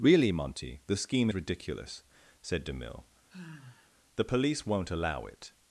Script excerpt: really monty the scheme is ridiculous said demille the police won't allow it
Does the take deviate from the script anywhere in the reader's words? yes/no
yes